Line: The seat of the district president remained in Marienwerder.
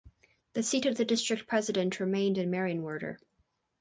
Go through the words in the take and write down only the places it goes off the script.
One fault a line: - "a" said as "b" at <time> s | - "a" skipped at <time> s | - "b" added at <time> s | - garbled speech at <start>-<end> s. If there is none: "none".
none